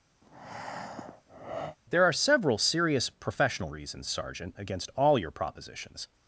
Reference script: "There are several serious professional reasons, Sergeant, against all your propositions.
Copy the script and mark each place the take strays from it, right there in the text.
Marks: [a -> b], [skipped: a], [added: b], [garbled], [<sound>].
[breath] "There are several serious professional reasons, Sergeant, against all your propositions.